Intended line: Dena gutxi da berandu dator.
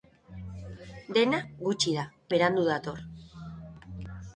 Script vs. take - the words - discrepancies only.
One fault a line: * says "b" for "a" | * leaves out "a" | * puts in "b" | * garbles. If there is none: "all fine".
all fine